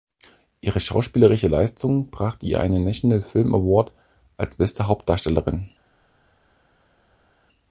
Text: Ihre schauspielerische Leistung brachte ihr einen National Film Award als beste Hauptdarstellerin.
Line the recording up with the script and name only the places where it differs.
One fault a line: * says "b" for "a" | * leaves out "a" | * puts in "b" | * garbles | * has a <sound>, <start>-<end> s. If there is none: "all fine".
all fine